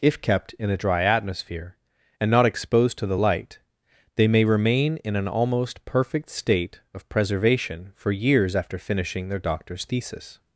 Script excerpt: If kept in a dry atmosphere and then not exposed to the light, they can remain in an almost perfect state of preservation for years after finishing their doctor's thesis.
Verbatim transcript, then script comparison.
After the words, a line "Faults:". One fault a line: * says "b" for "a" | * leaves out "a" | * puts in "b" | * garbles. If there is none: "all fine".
If kept in a dry atmosphere and not exposed to the light, they may remain in an almost perfect state of preservation for years after finishing their doctor's thesis.
Faults:
* leaves out "then"
* says "may" for "can"